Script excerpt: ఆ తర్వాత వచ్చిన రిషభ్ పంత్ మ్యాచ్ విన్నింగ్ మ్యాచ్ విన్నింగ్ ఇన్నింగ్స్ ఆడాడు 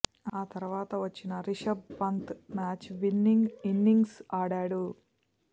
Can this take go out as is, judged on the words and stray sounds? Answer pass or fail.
fail